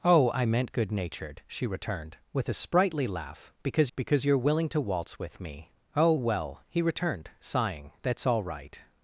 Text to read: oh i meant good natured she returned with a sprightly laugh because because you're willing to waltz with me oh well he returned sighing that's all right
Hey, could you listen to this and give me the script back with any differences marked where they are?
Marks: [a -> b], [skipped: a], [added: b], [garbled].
oh i meant good natured she returned with a sprightly laugh because because you're willing to waltz with me oh well he returned sighing that's all right